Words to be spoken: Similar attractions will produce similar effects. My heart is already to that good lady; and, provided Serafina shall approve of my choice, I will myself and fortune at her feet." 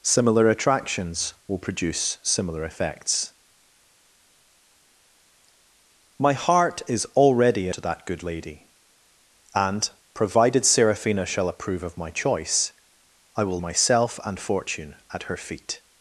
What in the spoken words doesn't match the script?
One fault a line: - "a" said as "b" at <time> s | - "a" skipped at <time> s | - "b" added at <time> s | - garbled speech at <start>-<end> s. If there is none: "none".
none